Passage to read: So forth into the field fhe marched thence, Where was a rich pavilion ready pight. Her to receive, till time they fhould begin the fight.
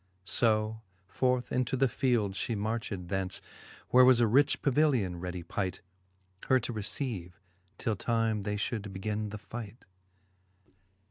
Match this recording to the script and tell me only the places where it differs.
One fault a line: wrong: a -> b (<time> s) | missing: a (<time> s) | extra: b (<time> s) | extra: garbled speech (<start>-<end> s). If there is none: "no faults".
no faults